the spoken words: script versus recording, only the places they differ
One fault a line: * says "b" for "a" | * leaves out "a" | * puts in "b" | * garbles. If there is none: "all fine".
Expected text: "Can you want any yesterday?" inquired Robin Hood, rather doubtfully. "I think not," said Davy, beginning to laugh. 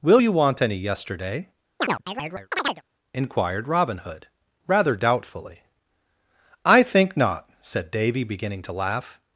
* says "Will" for "Can"